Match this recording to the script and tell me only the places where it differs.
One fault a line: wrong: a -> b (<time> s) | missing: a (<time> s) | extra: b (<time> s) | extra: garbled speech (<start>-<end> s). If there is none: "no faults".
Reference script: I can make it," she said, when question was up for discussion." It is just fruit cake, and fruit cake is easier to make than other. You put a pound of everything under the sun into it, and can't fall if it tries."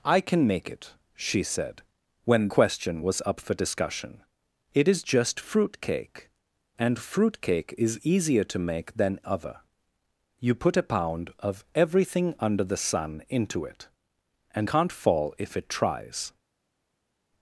no faults